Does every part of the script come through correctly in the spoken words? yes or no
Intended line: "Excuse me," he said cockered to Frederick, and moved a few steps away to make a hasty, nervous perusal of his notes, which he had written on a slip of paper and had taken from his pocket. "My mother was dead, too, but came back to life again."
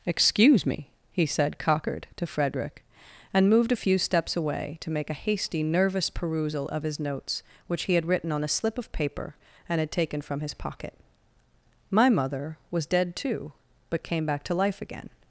yes